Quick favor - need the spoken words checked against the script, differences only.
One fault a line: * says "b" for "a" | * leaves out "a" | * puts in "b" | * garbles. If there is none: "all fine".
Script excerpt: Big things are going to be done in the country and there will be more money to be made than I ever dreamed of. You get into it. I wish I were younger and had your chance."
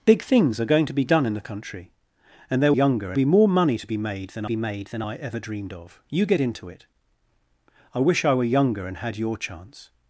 * says "younger" for "will"
* puts in "be made than"